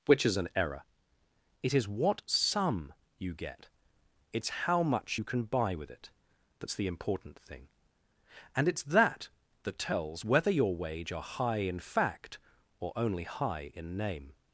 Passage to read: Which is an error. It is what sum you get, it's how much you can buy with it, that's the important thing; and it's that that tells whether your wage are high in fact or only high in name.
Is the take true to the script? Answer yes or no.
yes